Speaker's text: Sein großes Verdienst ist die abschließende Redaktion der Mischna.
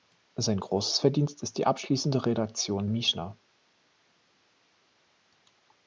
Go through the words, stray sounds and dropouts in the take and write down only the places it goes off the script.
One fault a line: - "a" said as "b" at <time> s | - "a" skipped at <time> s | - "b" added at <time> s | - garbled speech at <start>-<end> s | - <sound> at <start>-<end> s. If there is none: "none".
- "der" skipped at 2.9 s